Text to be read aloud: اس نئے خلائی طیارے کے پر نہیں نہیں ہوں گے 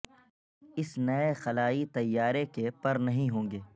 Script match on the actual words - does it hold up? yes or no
no